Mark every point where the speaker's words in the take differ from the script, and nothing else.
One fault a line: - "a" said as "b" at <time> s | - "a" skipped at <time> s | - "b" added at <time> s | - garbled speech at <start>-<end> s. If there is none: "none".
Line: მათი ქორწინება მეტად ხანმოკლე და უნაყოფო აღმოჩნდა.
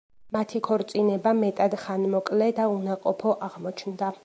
none